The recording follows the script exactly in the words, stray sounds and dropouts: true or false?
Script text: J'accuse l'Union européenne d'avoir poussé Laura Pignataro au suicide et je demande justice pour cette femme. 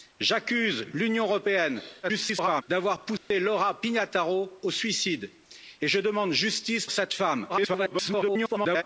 false